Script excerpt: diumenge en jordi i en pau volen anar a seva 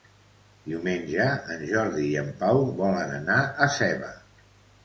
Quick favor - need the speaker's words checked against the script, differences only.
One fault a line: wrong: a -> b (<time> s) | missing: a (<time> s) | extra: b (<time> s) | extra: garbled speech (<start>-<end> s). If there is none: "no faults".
no faults